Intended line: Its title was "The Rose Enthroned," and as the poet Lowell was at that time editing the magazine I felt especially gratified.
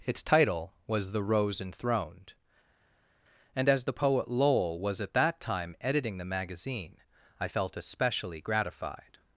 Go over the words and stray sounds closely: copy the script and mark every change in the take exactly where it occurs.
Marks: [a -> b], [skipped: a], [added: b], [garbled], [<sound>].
Its title was "The Rose Enthroned," and as the poet Lowell was at that time editing the magazine I felt especially gratified.